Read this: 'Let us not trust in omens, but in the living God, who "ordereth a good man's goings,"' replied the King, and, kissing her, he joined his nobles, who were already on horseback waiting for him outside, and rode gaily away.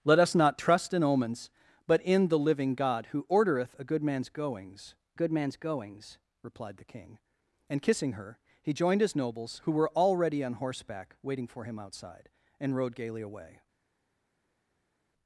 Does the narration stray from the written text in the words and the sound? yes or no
yes